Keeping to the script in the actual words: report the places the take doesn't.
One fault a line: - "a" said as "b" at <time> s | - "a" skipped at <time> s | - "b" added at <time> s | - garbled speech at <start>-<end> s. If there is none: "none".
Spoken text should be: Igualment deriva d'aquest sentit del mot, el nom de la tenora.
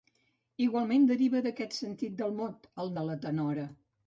- "nom" skipped at 3.0 s